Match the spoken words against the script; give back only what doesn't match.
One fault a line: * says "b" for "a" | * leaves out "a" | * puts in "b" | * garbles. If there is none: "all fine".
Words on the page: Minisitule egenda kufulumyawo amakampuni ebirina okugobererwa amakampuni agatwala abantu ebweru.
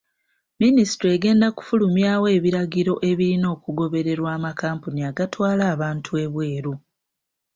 * says "ebiragiro" for "amakampuni"